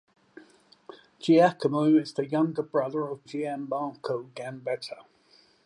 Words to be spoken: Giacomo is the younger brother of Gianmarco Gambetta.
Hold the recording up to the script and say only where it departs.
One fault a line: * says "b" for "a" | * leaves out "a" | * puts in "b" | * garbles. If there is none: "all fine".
all fine